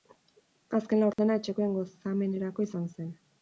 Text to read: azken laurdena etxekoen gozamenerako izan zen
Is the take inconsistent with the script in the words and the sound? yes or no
yes